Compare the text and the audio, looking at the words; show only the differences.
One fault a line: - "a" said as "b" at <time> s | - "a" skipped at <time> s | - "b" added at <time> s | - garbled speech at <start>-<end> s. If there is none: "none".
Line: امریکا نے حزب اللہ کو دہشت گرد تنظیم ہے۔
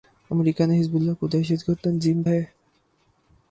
none